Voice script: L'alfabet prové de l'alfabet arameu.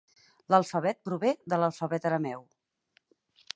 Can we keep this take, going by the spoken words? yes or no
yes